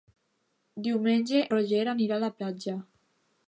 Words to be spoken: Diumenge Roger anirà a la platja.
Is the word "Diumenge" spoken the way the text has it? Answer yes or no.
yes